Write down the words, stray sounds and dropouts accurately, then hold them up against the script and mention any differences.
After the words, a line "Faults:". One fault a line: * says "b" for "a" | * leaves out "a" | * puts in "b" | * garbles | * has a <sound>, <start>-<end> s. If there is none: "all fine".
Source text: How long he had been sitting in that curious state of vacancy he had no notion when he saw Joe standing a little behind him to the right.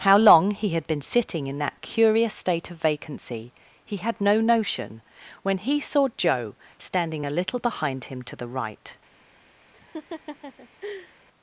How long he had been sitting in that curious state of vacancy he had no notion when he saw Joe standing a little behind him to the right.
Faults:
* has a laugh, 9.7-11.2 s